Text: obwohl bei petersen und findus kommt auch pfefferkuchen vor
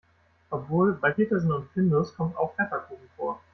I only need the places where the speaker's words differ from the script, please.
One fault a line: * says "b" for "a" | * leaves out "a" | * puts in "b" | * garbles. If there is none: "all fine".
all fine